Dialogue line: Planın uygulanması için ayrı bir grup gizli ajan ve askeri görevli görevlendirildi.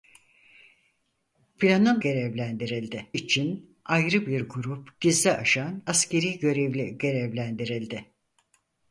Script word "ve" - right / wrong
wrong